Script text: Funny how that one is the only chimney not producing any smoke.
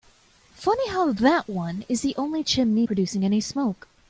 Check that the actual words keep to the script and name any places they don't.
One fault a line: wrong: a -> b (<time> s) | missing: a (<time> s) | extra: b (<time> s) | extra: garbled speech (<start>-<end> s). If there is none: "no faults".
missing: not (2.9 s)